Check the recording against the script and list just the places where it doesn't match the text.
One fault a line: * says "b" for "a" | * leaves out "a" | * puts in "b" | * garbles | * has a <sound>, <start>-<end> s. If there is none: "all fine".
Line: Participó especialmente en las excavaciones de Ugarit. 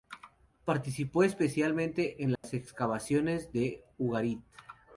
* has a dropout, 2.4-2.4 s